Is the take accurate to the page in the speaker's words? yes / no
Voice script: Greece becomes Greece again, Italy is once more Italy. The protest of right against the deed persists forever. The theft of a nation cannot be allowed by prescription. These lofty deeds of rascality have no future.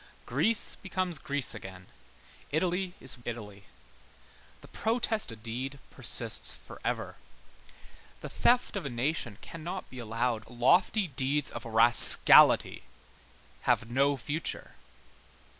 no